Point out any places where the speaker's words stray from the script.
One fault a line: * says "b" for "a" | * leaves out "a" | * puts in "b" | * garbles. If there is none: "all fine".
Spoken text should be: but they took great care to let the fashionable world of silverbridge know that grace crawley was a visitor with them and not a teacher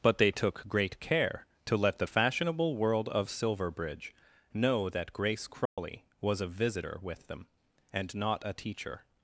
all fine